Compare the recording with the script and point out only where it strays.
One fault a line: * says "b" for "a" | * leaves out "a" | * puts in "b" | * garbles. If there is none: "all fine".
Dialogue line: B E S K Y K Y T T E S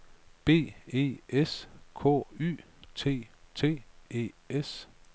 * leaves out "K Y"